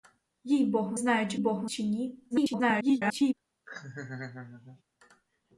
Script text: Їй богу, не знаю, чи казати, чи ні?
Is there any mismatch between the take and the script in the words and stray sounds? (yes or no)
yes